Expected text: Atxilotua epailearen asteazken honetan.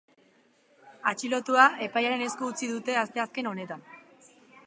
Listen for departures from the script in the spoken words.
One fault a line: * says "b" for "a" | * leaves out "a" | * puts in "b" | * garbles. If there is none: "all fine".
* puts in "esku utzi dute"